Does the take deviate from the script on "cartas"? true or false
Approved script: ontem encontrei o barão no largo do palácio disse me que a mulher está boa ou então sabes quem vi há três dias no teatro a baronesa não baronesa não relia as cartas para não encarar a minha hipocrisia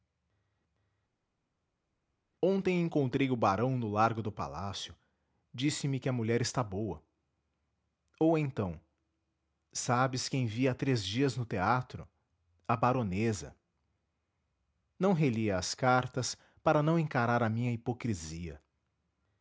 false